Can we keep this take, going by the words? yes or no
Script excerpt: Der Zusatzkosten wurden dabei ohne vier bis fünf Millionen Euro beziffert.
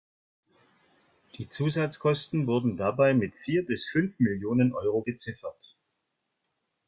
no